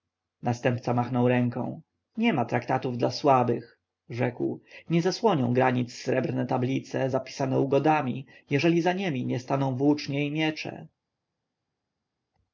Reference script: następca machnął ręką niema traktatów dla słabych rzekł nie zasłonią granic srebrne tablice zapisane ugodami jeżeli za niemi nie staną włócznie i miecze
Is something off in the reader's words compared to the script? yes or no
no